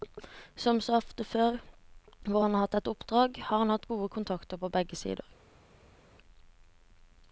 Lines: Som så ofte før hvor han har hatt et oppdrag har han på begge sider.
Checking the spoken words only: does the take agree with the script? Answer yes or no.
no